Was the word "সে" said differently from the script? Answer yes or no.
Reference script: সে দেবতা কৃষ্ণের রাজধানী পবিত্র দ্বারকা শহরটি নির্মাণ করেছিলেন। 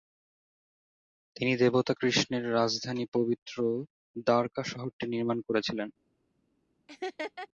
yes